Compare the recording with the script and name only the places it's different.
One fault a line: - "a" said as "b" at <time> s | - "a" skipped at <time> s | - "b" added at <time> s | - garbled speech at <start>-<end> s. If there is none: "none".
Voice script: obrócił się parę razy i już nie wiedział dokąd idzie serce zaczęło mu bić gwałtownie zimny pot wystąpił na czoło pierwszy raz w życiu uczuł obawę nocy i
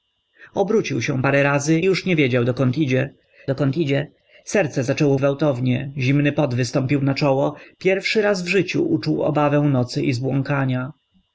- "i" skipped at 1.8 s
- "dokąd idzie" added at 3.5 s
- "mu bić" skipped at 5.2 s